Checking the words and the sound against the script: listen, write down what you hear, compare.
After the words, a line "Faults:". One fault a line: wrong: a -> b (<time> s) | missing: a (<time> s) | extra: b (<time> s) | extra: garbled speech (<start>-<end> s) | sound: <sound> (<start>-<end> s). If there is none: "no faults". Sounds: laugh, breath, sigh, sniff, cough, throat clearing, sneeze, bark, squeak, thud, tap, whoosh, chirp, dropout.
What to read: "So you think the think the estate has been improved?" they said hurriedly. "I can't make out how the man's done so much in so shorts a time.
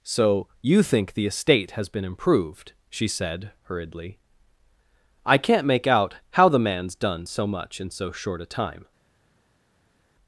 "So you think the estate has been improved?" she said hurriedly. "I can't make out how the man's done so much in so short a time.
Faults:
missing: think the (1.3 s)
wrong: they -> she (2.9 s)
wrong: shorts -> short (8.1 s)